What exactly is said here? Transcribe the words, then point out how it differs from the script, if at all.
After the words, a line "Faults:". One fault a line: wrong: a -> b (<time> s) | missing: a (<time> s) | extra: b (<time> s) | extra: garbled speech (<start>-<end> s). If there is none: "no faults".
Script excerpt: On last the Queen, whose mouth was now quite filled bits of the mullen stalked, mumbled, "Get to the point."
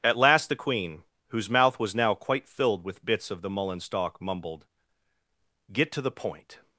At last the Queen, whose mouth was now quite filled with bits of the mullen stalk, mumbled, "Get to the point."
Faults:
wrong: On -> At (0.0 s)
extra: with (2.8 s)
wrong: stalked -> stalk (3.8 s)